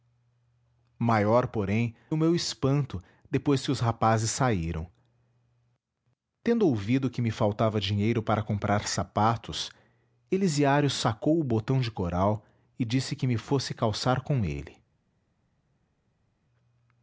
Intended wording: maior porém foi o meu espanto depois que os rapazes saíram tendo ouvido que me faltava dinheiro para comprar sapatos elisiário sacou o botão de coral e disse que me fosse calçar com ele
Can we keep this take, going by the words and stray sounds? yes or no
no